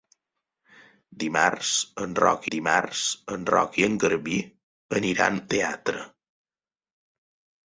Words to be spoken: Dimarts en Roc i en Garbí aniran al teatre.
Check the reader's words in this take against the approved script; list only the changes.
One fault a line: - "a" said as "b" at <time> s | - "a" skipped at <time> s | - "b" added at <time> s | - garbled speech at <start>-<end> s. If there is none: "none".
- "dimarts en Roc" added at 2.5 s
- "al" skipped at 5.4 s